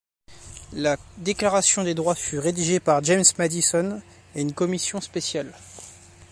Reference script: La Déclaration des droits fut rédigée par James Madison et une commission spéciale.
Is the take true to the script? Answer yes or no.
yes